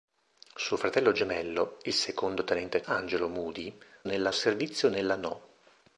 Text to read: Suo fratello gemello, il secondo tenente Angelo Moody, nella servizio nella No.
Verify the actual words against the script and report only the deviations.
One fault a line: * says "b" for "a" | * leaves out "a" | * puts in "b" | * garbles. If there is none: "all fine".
all fine